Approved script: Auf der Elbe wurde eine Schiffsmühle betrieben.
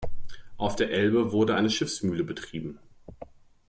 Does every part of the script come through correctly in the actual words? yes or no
yes